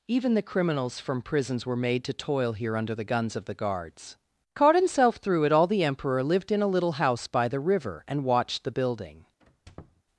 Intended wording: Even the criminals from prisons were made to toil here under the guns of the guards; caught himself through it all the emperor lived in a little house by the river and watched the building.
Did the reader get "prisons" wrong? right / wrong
right